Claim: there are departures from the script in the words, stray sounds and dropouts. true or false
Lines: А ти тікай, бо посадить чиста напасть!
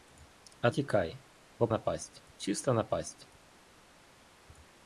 true